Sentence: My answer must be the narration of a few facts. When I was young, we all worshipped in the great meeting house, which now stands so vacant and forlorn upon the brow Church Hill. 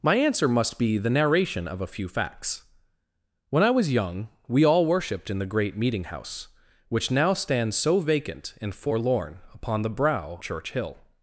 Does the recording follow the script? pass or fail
pass